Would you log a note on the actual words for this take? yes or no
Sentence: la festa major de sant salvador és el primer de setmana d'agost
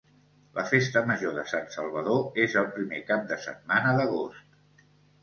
yes